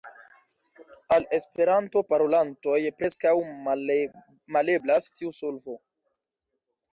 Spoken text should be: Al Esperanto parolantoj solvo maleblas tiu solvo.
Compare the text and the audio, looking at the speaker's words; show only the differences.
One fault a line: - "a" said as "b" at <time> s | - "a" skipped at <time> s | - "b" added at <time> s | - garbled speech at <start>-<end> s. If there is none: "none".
- "solvo" said as "preskaŭ" at 3.0 s